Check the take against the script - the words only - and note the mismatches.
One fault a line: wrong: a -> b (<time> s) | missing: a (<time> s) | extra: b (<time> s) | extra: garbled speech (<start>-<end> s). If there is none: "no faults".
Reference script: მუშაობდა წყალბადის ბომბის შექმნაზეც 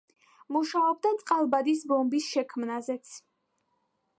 no faults